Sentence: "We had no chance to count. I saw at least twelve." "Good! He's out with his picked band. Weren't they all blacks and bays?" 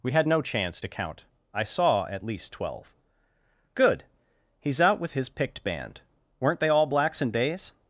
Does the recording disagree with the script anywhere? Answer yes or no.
yes